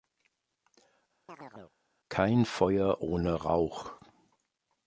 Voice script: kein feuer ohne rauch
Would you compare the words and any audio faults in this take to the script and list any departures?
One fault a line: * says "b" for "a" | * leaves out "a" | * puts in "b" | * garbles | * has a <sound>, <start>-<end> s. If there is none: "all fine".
* has a chirp, 1.3-1.8 s